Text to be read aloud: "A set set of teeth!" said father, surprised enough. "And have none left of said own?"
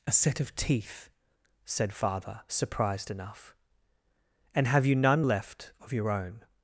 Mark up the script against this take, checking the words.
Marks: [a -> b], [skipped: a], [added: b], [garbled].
"A set [skipped: set] of teeth!" said father, surprised enough. "And have [added: you] none left of [said -> your] own?"